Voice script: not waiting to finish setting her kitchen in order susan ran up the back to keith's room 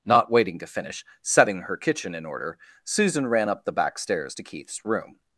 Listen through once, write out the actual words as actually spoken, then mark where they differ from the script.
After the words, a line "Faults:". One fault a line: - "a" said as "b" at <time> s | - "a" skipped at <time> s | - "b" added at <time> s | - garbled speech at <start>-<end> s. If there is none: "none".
not waiting to finish setting her kitchen in order susan ran up the back stairs to keith's room
Faults:
- "stairs" added at 4.0 s